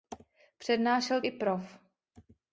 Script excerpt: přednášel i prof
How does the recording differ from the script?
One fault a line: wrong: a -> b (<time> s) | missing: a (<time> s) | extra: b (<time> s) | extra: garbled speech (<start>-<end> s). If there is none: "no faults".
no faults